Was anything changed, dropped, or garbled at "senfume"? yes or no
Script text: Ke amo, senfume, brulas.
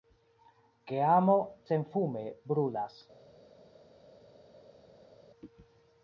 no